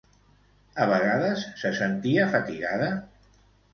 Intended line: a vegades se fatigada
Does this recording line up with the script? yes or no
no